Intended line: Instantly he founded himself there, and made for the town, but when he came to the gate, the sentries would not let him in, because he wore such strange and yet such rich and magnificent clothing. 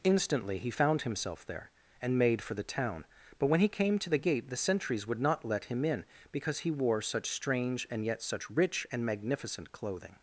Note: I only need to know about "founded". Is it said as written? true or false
false